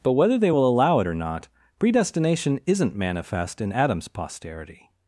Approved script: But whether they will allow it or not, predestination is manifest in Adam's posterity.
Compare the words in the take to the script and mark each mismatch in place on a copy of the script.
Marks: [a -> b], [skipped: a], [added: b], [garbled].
But whether they will allow it or not, predestination [is -> isn't] manifest in Adam's posterity.